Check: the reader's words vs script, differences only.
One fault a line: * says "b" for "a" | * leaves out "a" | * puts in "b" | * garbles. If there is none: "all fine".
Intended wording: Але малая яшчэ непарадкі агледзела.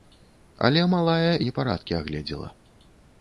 * leaves out "яшчэ"